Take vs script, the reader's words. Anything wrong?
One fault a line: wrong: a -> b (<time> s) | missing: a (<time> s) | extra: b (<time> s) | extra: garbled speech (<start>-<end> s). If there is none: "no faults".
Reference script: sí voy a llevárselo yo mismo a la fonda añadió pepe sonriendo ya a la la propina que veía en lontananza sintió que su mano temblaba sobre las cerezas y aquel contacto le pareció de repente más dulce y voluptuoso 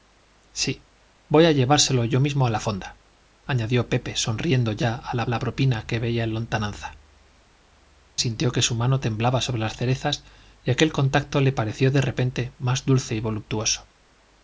no faults